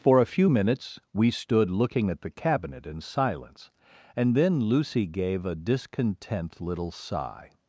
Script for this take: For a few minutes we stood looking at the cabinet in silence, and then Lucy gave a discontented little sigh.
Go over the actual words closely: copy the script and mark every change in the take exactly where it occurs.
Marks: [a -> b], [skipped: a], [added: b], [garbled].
For a few minutes we stood looking at the cabinet in silence, and then Lucy gave a [discontented -> discontent] little sigh.